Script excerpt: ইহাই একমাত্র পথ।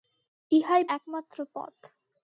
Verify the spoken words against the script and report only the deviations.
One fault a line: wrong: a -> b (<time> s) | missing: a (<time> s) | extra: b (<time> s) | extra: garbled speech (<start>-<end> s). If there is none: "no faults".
no faults